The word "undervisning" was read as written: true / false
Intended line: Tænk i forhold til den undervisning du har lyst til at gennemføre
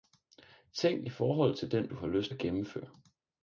false